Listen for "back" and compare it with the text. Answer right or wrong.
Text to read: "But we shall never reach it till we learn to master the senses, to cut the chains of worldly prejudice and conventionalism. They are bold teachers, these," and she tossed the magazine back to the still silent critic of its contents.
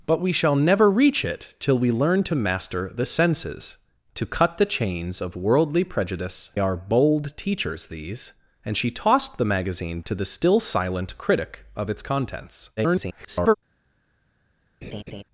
wrong